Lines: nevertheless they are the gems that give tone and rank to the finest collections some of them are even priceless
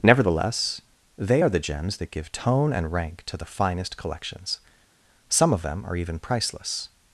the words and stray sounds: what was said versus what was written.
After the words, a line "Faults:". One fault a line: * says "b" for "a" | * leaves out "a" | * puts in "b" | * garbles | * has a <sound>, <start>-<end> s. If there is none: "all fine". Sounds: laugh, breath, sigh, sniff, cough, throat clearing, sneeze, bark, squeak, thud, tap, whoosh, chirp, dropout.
nevertheless they are the gems that give tone and rank to the finest collections some of them are even priceless
Faults:
all fine